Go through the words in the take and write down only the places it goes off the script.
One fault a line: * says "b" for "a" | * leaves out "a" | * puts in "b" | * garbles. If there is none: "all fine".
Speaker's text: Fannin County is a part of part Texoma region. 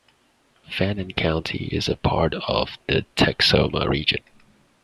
* says "the" for "part"